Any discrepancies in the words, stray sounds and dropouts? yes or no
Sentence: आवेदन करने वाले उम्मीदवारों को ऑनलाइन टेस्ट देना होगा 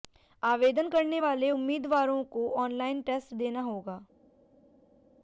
no